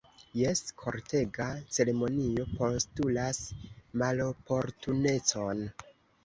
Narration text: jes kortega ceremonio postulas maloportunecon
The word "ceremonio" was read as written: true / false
true